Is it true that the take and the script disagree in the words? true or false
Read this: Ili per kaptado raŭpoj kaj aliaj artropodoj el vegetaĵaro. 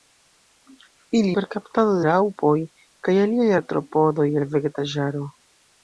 false